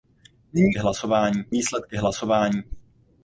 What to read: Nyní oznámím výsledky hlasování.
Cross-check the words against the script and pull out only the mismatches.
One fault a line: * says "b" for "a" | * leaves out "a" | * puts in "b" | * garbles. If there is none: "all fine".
* says "hlasování" for "oznámím"